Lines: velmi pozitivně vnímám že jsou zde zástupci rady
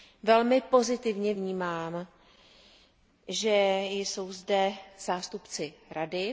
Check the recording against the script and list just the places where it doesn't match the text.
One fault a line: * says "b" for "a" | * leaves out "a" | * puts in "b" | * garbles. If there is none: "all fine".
all fine